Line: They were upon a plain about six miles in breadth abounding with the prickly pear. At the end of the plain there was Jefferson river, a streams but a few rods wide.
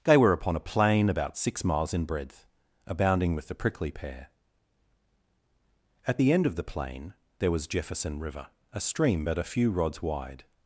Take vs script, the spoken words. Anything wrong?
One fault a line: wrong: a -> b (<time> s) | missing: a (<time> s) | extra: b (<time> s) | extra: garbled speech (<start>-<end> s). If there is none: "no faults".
wrong: streams -> stream (8.8 s)